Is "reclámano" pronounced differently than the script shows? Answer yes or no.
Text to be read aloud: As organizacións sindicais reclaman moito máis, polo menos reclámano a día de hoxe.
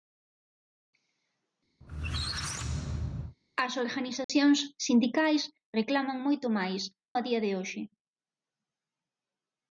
yes